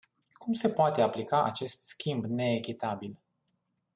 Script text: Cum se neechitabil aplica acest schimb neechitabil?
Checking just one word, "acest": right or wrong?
right